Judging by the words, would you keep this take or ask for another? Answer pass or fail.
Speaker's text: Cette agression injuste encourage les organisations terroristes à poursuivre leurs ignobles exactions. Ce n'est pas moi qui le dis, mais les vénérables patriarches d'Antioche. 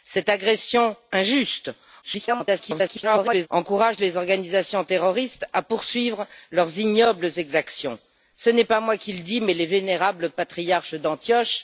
fail